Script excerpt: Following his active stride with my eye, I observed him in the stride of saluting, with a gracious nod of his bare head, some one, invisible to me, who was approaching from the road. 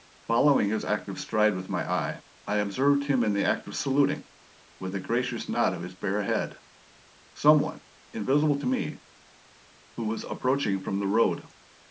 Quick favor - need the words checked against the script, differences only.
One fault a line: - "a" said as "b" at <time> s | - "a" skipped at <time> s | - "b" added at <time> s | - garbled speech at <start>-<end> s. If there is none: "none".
- "stride" said as "act" at 3.4 s